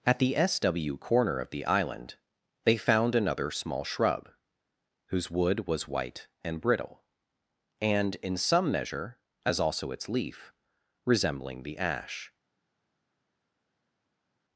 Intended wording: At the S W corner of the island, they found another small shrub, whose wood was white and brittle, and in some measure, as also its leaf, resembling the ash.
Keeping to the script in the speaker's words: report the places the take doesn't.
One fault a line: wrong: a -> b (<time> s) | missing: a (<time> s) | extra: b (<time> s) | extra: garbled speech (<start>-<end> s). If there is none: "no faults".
no faults